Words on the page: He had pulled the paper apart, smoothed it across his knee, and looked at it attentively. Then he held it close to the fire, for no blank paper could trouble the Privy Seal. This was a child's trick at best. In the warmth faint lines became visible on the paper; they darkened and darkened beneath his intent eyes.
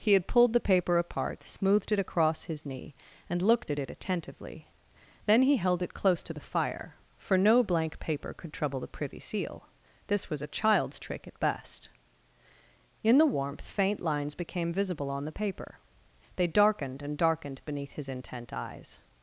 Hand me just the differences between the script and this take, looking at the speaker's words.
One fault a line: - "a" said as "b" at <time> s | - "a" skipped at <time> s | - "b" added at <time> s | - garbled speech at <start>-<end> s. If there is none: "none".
none